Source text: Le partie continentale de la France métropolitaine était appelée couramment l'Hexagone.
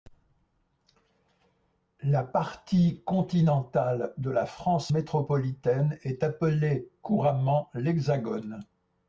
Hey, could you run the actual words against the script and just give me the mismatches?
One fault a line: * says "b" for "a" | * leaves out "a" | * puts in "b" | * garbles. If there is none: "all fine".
* says "La" for "Le"
* says "est" for "était"